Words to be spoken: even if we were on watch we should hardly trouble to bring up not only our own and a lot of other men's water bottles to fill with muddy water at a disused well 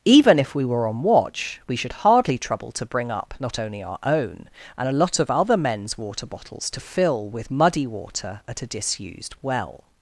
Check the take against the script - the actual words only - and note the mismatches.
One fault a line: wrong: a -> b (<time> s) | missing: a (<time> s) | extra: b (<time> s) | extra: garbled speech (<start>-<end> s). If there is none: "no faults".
no faults